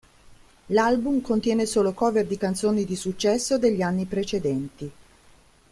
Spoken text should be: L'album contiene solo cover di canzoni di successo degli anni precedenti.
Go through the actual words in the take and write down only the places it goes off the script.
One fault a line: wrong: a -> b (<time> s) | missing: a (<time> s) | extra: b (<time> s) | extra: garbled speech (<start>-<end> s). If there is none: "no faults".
no faults